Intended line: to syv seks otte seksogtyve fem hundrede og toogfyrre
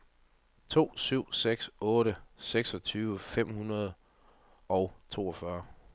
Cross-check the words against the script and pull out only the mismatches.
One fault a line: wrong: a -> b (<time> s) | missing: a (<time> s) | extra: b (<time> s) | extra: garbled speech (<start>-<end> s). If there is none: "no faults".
no faults